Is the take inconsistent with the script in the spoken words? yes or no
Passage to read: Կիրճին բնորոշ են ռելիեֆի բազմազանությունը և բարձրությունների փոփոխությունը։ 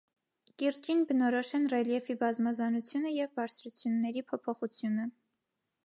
no